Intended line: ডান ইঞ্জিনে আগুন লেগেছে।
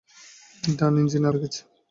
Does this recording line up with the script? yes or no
no